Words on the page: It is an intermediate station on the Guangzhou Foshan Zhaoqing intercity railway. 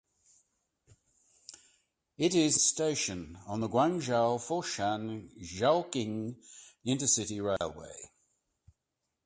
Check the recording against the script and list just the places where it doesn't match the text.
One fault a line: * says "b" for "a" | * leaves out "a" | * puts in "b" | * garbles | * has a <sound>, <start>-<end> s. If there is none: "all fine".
* leaves out "an intermediate"
* has a dropout, 7.6-7.6 s